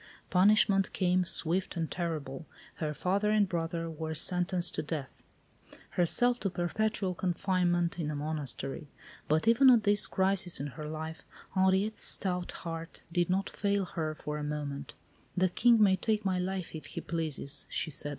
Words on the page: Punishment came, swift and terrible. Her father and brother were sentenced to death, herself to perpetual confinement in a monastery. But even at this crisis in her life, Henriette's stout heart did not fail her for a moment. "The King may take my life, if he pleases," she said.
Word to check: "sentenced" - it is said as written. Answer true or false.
true